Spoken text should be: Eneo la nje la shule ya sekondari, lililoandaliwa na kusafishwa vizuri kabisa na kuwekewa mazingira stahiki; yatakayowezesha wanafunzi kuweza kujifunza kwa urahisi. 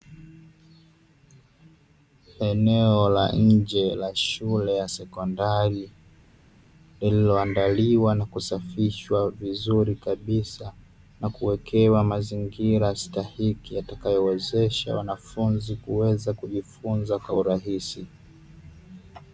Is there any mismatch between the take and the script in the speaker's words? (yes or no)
no